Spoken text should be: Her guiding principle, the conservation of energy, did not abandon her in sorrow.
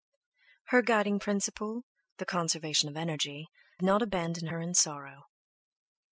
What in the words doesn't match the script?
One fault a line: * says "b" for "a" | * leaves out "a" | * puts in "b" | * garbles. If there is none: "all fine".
* leaves out "did"